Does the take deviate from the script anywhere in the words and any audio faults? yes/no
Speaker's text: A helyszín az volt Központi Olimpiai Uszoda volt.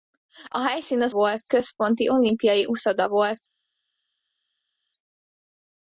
no